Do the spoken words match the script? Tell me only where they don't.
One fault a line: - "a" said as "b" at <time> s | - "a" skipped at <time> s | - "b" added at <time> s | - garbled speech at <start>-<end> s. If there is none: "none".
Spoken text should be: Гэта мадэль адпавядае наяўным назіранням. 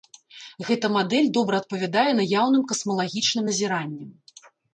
- "добра" added at 1.4 s
- "касмалагічным" added at 2.7 s